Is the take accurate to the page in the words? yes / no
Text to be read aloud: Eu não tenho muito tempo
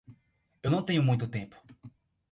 yes